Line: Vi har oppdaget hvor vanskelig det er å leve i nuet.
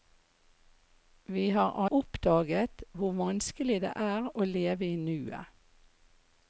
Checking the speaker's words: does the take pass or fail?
pass